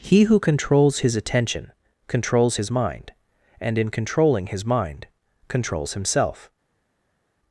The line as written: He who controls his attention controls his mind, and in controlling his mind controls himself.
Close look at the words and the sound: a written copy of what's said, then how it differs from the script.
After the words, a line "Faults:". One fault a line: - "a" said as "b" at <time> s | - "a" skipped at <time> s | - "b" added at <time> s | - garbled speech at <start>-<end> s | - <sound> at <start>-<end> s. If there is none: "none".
He who controls his attention controls his mind, and in controlling his mind controls himself.
Faults:
none